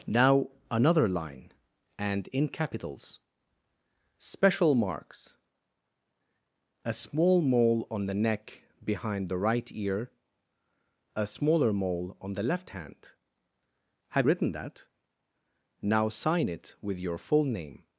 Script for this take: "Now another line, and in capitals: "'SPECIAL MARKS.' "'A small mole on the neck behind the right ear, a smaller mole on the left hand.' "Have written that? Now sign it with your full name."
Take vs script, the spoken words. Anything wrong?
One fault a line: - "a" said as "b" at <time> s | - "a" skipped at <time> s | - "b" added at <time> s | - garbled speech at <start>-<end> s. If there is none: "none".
none